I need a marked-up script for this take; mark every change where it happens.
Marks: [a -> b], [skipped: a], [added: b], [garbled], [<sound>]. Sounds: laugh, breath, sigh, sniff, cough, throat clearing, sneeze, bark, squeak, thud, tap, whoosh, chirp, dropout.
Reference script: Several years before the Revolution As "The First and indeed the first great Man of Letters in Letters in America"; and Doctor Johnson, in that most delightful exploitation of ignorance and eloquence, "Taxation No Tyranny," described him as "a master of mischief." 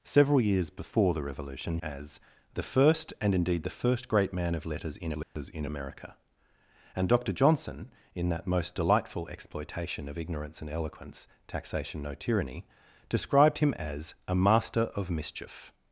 Several years before the Revolution As "The First and indeed the first great Man of Letters in Letters [dropout] in America"; and Doctor Johnson, in that most delightful exploitation of ignorance and eloquence, "Taxation No Tyranny," described him as "a master of mischief."